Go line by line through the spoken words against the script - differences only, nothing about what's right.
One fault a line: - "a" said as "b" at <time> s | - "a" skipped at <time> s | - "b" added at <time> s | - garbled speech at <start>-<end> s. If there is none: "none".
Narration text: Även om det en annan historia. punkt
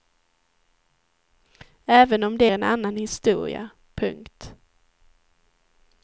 none